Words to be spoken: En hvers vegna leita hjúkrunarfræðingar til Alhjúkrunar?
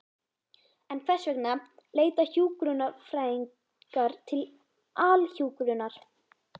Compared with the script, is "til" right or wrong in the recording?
right